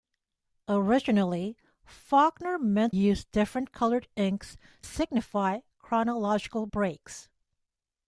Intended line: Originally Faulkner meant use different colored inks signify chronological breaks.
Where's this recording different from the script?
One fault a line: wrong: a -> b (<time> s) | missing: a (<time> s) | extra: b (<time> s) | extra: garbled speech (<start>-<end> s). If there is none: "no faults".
no faults